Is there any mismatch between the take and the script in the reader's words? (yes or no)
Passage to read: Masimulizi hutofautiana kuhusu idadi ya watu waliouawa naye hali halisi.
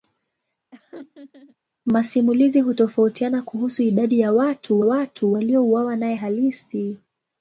yes